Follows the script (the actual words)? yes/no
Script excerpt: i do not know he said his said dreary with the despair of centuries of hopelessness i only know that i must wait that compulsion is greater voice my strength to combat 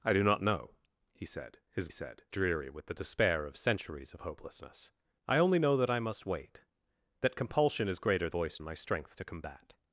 yes